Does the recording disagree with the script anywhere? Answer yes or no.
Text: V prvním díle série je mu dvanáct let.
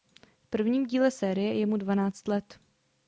no